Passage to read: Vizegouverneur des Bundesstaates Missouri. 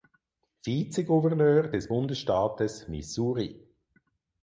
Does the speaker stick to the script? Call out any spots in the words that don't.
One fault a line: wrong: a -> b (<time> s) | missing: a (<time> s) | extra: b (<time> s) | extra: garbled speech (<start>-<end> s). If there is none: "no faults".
no faults